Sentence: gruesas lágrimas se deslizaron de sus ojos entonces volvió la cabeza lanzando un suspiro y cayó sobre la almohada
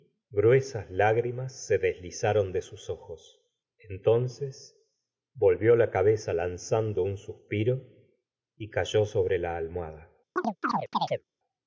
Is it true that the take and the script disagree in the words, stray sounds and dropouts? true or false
true